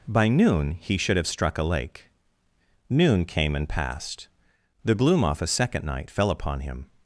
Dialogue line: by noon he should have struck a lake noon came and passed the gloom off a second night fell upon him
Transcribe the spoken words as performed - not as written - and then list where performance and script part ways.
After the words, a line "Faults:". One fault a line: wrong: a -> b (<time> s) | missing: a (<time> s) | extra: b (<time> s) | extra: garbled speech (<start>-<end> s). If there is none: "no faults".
by noon he should have struck a lake noon came and passed the gloom off a second night fell upon him
Faults:
no faults